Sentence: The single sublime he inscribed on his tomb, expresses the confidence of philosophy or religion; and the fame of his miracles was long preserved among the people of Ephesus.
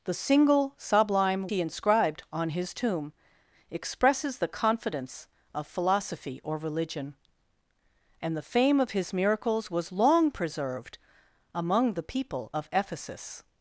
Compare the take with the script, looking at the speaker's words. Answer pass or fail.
pass